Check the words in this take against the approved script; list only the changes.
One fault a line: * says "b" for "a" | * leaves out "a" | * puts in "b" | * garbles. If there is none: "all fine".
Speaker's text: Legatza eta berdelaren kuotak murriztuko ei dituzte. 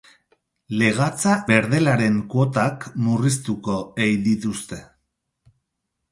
* leaves out "eta"